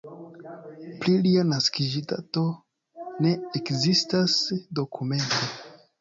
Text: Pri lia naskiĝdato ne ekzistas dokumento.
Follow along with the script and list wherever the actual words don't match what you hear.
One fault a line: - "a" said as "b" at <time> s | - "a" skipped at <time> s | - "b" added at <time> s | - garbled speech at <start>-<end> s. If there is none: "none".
none